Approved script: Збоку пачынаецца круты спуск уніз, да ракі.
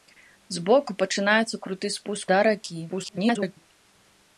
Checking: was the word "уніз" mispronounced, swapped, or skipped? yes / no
yes